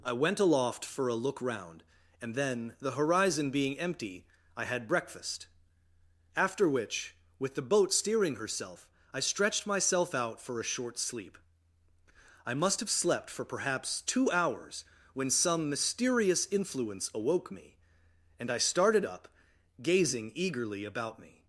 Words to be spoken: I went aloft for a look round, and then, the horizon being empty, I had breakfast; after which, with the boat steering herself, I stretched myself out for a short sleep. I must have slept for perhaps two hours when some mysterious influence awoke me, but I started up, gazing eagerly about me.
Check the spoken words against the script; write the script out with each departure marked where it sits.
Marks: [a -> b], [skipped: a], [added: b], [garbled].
I went aloft for a look round, and then, the horizon being empty, I had breakfast; after which, with the boat steering herself, I stretched myself out for a short sleep. I must have slept for perhaps two hours when some mysterious influence awoke me, [but -> and] I started up, gazing eagerly about me.